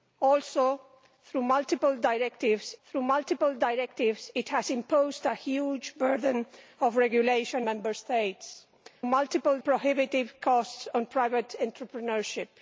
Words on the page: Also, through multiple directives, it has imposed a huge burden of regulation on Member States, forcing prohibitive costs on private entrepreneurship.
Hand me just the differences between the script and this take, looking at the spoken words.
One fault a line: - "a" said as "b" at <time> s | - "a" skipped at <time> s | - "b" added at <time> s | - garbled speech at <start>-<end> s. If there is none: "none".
- "through multiple directives" added at 2.8 s
- "on" skipped at 7.7 s
- "forcing" said as "multiple" at 9.1 s